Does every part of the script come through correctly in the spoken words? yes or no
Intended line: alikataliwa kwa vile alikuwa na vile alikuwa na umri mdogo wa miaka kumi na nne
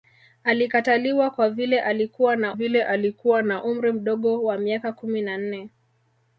yes